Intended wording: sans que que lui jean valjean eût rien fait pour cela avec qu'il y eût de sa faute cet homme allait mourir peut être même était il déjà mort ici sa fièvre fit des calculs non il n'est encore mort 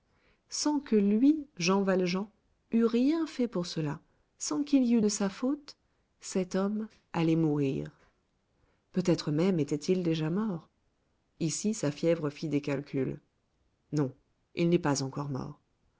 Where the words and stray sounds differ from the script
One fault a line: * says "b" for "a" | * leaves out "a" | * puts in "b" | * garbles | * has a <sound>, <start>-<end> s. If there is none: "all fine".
* leaves out "que"
* says "sans" for "avec"
* puts in "pas"